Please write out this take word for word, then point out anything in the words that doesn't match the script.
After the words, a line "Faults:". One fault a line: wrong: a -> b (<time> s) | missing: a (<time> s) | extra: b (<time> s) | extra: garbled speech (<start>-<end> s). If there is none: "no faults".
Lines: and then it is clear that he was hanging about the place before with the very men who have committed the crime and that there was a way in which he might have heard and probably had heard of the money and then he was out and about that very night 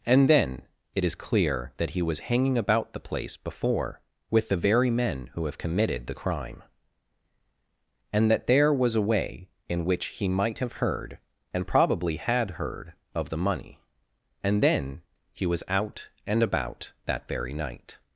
and then it is clear that he was hanging about the place before with the very men who have committed the crime and that there was a way in which he might have heard and probably had heard of the money and then he was out and about that very night
Faults:
no faults